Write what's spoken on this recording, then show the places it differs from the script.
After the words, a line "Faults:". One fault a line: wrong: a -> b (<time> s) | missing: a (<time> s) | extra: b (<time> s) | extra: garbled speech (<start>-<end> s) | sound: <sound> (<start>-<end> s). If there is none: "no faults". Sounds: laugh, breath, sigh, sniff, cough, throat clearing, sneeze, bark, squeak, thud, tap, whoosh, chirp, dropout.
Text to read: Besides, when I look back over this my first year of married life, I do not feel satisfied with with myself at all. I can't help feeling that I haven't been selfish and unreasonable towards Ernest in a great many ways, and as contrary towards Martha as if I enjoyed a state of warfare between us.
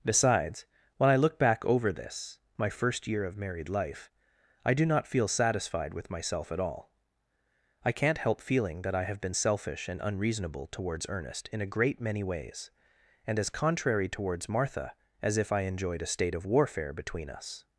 Besides, when I look back over this my first year of married life, I do not feel satisfied with myself at all. I can't help feeling that I have been selfish and unreasonable towards Ernest in a great many ways, and as contrary towards Martha as if I enjoyed a state of warfare between us.
Faults:
missing: with (6.1 s)
wrong: haven't -> have (9.0 s)